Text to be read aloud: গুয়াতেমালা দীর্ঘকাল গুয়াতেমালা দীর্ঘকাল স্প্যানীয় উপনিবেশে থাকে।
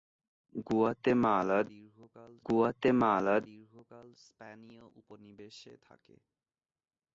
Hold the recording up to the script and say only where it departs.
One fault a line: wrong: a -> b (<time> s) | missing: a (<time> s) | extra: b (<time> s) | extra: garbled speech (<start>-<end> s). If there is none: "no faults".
no faults